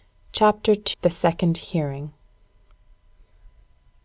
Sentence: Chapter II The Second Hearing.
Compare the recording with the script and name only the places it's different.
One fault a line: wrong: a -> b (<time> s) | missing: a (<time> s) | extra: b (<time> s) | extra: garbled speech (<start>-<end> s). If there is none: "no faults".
missing: II (0.7 s)